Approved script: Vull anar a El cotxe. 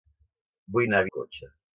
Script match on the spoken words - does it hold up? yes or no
yes